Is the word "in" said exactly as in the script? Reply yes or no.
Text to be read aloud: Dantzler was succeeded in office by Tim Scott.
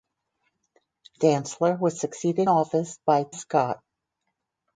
no